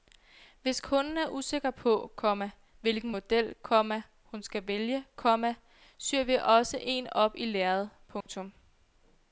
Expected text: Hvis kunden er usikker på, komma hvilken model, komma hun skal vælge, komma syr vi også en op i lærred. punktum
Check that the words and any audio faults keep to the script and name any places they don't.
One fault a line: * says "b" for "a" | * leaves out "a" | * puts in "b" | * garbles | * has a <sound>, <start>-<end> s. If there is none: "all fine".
* has a dropout, 8.2-8.3 s